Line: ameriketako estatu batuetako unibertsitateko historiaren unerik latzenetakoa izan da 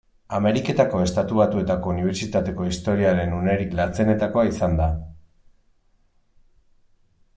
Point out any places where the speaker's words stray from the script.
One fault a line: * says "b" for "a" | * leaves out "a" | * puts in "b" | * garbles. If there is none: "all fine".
all fine